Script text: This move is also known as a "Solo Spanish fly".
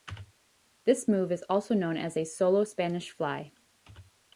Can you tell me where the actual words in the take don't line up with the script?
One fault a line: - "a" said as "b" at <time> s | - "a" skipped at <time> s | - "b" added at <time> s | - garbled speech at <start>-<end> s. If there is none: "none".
none